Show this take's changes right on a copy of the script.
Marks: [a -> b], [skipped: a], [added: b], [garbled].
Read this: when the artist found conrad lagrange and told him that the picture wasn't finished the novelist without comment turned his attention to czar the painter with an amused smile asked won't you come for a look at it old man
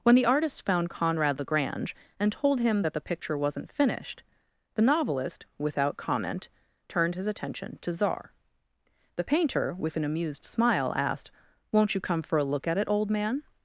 when the artist found conrad lagrange and told him that the picture wasn't finished the novelist without comment turned his attention to czar the painter with an amused smile asked won't you come for a look at it old man